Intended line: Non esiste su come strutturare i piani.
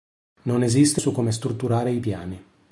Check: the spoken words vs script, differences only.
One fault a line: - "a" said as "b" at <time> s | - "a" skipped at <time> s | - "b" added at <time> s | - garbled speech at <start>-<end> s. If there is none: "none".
none